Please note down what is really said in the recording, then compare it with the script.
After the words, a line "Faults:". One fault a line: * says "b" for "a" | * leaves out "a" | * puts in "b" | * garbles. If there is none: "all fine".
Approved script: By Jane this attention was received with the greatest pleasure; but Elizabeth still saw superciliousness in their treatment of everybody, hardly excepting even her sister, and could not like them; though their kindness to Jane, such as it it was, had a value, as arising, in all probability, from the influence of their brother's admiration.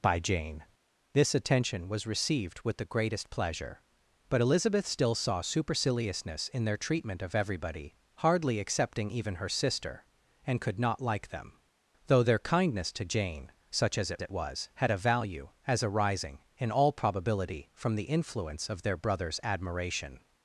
By Jane this attention was received with the greatest pleasure; but Elizabeth still saw superciliousness in their treatment of everybody, hardly excepting even her sister, and could not like them; though their kindness to Jane, such as it it was, had a value, as arising, in all probability, from the influence of their brother's admiration.
Faults:
all fine